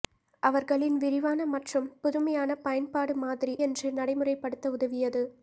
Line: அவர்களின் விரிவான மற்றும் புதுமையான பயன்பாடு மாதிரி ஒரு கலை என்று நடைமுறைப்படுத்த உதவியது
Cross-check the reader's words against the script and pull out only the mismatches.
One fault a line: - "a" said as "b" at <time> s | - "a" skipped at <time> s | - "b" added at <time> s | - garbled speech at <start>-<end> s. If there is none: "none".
- "ஒரு கலை" skipped at 3.5 s